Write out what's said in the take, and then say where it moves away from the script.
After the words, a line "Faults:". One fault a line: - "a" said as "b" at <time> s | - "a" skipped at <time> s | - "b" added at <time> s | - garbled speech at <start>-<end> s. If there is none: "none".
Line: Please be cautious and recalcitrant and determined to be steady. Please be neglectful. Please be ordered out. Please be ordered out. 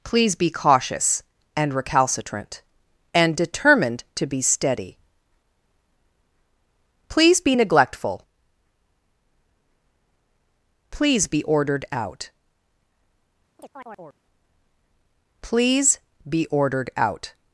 Please be cautious and recalcitrant and determined to be steady. Please be neglectful. Please be ordered out. Please be ordered out.
Faults:
none